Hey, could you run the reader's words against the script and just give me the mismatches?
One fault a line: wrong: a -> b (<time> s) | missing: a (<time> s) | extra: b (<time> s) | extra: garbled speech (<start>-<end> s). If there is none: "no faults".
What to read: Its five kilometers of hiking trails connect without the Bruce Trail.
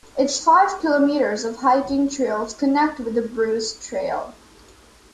wrong: without -> with (3.0 s)